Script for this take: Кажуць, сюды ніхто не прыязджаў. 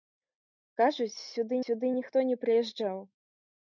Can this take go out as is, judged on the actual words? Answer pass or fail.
fail